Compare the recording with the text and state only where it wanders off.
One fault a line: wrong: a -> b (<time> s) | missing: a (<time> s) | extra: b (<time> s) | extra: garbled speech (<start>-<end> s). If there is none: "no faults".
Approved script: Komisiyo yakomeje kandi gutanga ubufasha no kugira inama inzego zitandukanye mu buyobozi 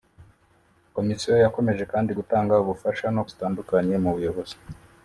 missing: kugira inama inzego (3.2 s)